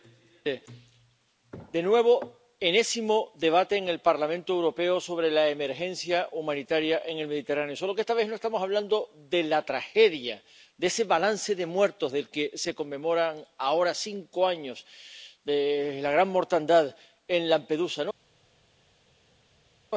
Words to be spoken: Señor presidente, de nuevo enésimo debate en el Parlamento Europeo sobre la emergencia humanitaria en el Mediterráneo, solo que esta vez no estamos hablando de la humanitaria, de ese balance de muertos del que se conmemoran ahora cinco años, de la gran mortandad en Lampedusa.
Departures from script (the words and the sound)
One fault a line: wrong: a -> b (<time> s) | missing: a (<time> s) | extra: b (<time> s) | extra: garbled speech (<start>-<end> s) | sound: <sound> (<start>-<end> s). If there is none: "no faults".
wrong: humanitaria -> tragedia (9.7 s)